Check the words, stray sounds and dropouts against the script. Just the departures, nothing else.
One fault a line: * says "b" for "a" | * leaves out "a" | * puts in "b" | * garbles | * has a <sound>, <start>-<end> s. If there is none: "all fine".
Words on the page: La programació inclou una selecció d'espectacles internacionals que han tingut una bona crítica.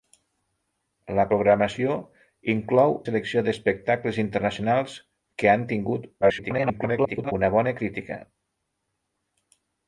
* leaves out "una"
* garbles